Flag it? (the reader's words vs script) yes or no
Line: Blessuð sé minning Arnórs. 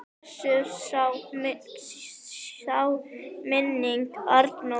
no